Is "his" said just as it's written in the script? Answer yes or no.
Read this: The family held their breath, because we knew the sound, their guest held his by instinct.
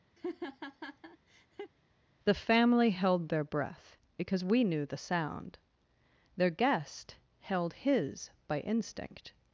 yes